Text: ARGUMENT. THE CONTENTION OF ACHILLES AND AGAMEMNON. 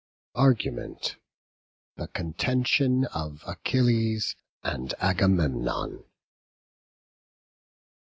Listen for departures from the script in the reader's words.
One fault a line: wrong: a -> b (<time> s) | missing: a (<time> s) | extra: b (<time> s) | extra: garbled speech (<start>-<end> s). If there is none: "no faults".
no faults